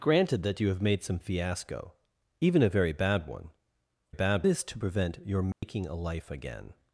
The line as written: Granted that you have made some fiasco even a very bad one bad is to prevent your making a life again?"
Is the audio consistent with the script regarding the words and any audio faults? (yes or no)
no